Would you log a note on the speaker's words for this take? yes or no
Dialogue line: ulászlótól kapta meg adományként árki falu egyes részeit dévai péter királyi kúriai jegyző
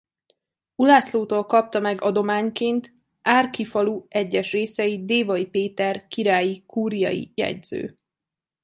no